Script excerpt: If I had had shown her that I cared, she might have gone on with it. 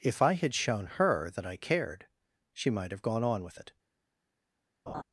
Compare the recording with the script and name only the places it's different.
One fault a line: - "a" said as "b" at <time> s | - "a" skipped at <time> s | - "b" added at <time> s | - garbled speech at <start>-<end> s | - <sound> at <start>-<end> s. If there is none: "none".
- "had" skipped at 0.6 s
- laugh at 4.9-5.0 s